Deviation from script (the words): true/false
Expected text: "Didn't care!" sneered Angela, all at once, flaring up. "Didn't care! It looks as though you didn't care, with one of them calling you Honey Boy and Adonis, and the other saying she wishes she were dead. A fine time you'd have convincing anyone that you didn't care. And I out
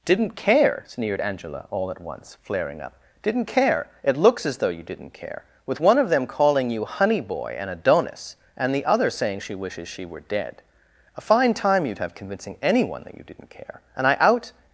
false